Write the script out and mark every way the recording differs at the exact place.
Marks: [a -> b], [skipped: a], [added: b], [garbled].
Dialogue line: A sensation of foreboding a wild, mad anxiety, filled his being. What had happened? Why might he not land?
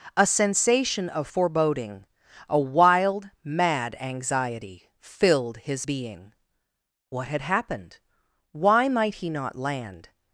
A sensation of foreboding a wild, mad anxiety, filled his being. What had happened? Why might he not land?